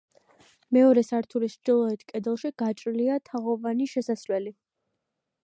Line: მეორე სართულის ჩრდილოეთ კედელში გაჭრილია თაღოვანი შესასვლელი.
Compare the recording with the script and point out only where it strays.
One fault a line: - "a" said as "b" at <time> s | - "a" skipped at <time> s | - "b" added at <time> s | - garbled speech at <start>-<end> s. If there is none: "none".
none